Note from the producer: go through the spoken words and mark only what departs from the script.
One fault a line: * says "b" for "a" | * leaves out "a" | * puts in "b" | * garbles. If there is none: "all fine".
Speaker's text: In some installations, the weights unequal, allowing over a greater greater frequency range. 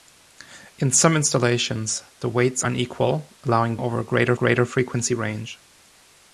all fine